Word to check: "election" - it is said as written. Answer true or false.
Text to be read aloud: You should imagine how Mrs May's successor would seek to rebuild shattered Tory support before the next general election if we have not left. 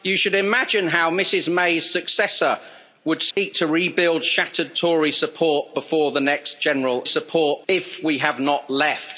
false